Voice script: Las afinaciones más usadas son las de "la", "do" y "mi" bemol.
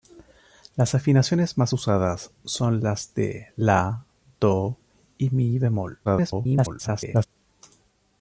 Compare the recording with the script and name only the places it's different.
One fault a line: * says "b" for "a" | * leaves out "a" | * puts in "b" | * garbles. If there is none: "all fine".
* garbles